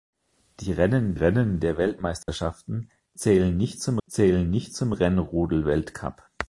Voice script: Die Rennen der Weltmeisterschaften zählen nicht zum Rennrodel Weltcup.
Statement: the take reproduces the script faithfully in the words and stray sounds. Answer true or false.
false